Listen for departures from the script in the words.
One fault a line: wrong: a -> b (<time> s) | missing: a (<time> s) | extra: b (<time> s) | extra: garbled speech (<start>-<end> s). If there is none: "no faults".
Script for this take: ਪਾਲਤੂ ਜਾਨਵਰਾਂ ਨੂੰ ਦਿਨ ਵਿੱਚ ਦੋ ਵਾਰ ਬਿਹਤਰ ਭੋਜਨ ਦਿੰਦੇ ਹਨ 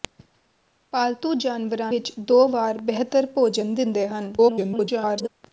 missing: ਨੂੰ ਦਿਨ (1.9 s)
extra: garbled speech (4.4-5.3 s)